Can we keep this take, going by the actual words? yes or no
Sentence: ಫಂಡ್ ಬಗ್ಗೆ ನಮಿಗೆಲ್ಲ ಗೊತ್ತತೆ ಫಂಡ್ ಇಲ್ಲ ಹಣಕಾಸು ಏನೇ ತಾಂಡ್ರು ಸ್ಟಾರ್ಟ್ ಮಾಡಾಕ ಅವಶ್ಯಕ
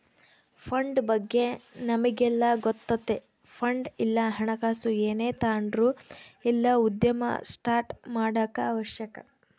no